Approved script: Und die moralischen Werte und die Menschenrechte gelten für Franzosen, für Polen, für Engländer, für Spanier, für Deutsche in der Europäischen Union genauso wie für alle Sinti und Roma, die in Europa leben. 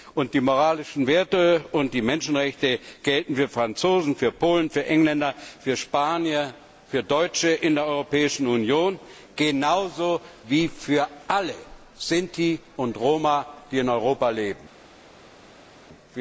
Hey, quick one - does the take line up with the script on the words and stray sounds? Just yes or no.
yes